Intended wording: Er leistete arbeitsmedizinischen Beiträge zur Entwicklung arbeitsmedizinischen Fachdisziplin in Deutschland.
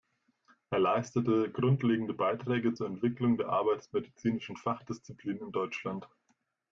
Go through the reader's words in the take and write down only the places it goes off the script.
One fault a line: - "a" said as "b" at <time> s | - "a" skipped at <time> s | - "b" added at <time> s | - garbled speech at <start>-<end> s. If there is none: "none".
- "arbeitsmedizinischen" said as "grundlegende" at 1.5 s
- "der" added at 3.4 s